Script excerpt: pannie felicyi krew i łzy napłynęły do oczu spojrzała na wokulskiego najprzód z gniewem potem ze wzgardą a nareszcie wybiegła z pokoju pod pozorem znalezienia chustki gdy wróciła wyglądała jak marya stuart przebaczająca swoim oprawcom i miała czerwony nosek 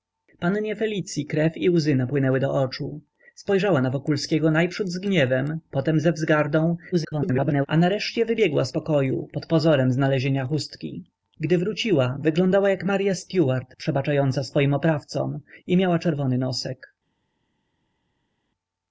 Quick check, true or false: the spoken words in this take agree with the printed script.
false